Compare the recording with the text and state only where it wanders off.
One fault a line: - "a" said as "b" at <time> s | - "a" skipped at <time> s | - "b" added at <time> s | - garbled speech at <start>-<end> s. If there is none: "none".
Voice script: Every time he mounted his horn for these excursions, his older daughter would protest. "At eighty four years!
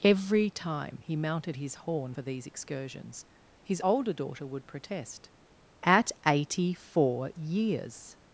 none